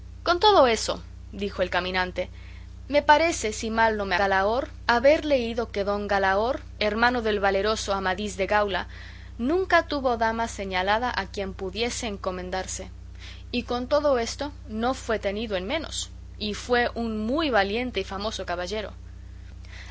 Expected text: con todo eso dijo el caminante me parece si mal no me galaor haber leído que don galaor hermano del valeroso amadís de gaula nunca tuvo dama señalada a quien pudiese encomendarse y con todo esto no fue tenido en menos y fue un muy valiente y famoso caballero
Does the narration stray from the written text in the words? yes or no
no